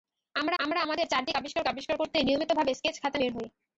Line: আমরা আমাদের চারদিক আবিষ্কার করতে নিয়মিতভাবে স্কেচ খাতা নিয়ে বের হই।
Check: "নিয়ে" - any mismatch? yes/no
yes